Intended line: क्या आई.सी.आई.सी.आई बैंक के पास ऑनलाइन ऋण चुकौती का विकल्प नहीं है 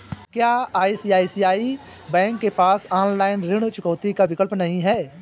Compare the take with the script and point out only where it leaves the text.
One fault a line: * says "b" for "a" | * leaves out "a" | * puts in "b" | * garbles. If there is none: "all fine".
all fine